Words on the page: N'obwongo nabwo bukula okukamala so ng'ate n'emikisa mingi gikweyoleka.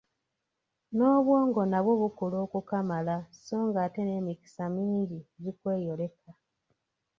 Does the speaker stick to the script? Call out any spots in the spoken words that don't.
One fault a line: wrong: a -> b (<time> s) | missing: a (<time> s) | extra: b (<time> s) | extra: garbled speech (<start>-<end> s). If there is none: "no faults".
no faults